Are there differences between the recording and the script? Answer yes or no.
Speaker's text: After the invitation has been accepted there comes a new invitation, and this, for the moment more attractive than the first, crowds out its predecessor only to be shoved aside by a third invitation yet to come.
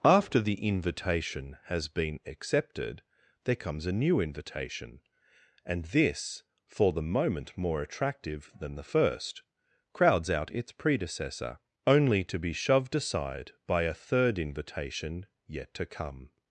no